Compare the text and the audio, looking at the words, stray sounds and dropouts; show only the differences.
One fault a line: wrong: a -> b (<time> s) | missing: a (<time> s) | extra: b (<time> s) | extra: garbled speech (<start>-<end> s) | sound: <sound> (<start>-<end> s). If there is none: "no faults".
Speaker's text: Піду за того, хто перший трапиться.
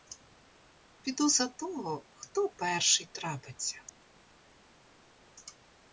no faults